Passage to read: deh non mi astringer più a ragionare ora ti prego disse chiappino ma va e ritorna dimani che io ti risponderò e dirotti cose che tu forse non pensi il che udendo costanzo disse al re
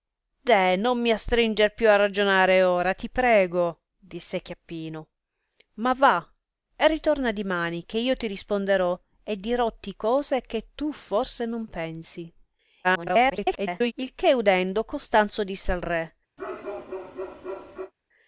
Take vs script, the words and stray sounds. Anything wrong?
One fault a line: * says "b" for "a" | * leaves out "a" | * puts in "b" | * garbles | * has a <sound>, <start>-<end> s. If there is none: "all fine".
* garbles
* has a bark, 16.4-17.9 s